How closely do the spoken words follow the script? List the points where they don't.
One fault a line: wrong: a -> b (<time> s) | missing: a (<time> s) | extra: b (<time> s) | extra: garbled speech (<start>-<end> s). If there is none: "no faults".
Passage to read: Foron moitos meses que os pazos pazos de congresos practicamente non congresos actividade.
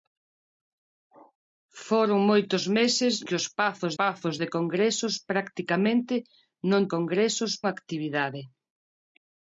no faults